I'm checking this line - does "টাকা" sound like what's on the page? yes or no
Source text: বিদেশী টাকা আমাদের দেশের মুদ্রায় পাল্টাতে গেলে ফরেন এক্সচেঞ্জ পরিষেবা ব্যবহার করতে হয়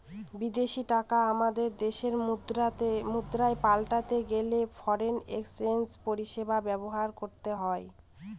yes